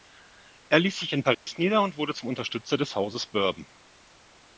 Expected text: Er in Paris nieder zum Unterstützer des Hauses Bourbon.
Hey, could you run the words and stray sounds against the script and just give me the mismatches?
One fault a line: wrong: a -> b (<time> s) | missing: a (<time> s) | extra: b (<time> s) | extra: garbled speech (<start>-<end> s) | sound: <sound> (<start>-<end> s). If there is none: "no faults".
extra: ließ sich (0.8 s)
sound: dropout (1.3-1.5 s)
extra: und wurde (1.8 s)